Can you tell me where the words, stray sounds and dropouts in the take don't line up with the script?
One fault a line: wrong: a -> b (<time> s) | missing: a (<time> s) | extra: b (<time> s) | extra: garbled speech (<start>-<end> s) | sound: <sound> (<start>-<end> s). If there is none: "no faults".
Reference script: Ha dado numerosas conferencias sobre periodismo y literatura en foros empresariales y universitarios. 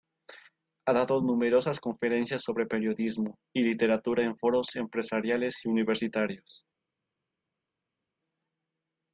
no faults